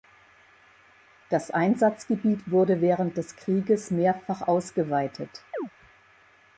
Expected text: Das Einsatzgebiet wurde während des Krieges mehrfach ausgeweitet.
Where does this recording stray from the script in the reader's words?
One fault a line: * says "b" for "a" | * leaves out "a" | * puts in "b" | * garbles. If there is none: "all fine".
all fine